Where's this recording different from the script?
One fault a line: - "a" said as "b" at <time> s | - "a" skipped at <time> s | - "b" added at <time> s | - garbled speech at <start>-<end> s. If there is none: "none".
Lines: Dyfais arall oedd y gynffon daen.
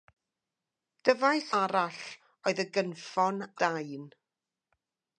none